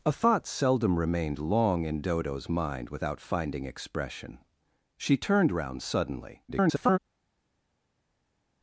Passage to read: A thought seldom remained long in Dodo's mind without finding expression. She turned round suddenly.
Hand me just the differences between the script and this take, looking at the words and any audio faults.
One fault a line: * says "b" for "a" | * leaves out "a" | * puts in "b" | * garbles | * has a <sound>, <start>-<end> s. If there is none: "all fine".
* garbles